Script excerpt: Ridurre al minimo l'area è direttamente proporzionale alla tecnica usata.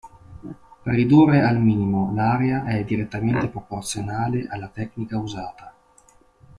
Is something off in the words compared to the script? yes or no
no